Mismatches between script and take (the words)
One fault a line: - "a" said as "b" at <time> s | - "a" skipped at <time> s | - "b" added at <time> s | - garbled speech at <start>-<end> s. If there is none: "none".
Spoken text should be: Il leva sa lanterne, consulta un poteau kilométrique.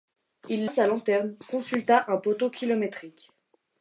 - "leva" skipped at 0.7 s